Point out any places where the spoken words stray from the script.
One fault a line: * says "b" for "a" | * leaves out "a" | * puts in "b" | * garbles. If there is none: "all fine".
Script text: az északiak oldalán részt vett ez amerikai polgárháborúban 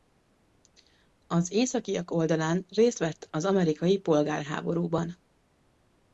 * says "az" for "ez"